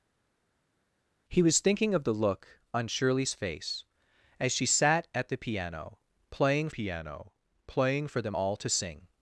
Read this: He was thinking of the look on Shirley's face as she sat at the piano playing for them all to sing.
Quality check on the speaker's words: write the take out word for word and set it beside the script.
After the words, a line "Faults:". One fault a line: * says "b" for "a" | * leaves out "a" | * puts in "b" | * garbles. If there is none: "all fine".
He was thinking of the look on Shirley's face as she sat at the piano playing piano playing for them all to sing.
Faults:
* puts in "piano playing"